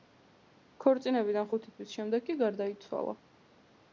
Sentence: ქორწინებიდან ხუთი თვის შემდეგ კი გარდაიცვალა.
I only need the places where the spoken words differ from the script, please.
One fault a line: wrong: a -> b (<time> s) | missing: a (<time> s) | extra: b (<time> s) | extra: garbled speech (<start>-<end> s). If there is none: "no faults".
no faults